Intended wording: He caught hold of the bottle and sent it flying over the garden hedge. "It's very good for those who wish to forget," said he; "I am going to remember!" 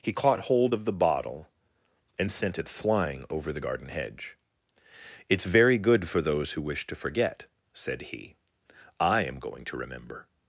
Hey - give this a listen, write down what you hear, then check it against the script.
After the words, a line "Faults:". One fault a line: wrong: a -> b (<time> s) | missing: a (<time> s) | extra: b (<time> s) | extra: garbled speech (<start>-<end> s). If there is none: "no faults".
He caught hold of the bottle and sent it flying over the garden hedge. "It's very good for those who wish to forget," said he; "I am going to remember!"
Faults:
no faults